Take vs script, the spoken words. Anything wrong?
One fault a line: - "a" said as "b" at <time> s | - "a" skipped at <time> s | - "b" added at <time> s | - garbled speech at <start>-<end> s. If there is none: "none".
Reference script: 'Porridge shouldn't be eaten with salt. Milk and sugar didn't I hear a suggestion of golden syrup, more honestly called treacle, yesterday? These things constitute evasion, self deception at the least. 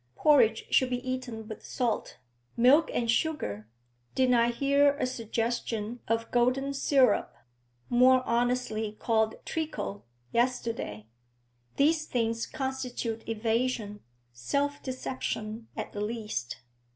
- "shouldn't" said as "should" at 0.7 s